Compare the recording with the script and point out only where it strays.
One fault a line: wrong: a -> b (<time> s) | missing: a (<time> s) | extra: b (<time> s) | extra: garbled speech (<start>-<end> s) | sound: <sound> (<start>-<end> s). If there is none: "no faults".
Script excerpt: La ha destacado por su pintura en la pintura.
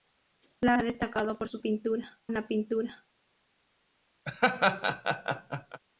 sound: laugh (4.3-5.8 s)